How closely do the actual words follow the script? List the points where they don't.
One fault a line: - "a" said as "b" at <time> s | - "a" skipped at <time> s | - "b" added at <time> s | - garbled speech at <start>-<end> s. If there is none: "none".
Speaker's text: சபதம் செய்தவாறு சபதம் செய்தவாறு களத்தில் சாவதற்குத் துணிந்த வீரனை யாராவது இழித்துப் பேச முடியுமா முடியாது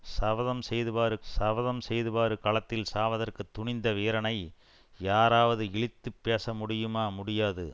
none